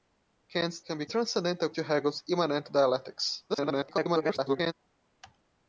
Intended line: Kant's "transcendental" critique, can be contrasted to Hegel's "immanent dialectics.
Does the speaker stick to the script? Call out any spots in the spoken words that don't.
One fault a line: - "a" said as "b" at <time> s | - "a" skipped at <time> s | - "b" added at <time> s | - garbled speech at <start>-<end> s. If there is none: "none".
- "transcendental critique" skipped at 0.8 s
- "contrasted" said as "transcendental" at 1.0 s
- garbled speech at 3.5-4.7 s